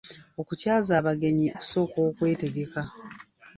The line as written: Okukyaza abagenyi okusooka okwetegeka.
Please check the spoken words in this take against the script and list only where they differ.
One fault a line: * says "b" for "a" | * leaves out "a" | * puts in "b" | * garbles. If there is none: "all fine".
all fine